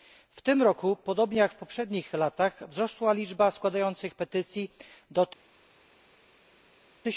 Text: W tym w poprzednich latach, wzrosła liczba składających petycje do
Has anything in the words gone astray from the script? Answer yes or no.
yes